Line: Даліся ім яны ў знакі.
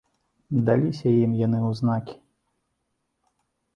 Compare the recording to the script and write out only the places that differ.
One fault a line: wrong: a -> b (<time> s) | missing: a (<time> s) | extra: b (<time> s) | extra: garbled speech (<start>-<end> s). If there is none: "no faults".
no faults